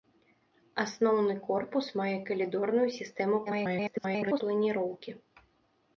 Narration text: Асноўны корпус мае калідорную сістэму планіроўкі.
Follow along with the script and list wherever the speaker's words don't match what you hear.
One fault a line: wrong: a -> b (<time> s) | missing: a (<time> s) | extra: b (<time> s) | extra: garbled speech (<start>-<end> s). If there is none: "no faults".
extra: garbled speech (3.5-4.4 s)